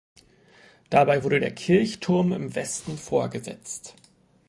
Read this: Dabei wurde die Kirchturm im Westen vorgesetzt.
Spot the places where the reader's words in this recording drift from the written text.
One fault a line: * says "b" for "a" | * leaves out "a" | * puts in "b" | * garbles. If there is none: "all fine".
* says "der" for "die"